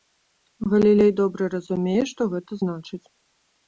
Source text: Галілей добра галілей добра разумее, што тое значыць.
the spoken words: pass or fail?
fail